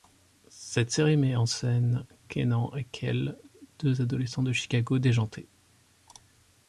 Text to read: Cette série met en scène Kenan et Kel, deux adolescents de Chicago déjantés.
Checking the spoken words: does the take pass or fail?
pass